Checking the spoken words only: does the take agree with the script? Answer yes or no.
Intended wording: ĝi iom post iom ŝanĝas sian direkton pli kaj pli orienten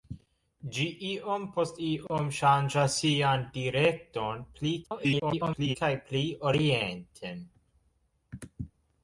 no